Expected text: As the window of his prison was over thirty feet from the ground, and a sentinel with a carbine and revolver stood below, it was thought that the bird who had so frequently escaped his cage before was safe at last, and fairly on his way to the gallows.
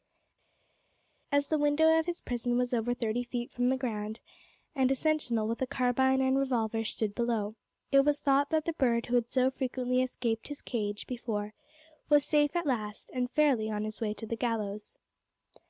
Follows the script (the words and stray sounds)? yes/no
yes